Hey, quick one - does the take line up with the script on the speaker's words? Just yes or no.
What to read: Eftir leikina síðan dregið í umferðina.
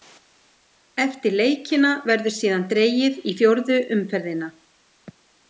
no